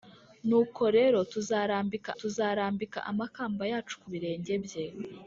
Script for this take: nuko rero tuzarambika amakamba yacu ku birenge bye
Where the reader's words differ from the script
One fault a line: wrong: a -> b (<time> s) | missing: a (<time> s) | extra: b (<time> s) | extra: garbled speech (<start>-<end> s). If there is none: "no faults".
extra: tuzarambika (2.2 s)